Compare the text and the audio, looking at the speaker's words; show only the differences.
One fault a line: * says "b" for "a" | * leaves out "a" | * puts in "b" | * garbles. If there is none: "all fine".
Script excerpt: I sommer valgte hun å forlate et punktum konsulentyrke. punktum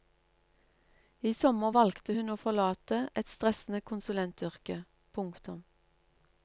* says "stressende" for "punktum"